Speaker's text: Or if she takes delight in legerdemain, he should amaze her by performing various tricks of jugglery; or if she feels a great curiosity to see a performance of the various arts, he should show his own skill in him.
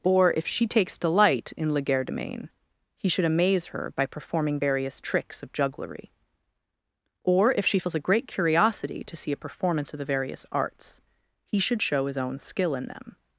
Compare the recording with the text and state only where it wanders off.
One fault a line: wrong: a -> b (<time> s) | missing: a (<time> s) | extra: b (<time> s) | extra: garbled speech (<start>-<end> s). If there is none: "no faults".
wrong: him -> them (12.9 s)